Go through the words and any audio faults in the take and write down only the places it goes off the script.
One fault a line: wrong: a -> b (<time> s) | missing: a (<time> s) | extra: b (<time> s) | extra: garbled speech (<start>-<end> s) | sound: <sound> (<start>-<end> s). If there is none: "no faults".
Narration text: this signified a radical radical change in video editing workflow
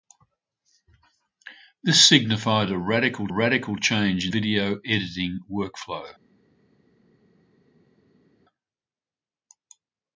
no faults